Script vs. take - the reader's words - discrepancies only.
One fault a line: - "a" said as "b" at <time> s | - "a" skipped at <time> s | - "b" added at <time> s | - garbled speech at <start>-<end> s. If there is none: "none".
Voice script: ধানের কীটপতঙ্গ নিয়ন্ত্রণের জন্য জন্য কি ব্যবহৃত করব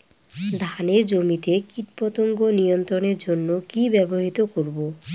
- "জমিতে" added at 1.1 s
- "জন্য" skipped at 3.5 s